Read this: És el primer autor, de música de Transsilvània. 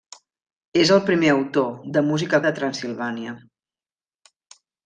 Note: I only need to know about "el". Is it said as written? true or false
true